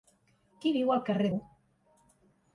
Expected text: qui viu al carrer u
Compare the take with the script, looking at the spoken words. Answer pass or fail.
pass